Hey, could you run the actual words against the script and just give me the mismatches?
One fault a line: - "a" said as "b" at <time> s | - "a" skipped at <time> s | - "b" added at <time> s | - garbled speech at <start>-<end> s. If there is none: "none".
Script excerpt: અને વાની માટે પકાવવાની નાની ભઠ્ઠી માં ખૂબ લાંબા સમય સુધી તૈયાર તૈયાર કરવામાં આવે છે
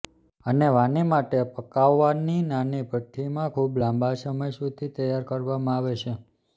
- "તૈયાર" skipped at 5.3 s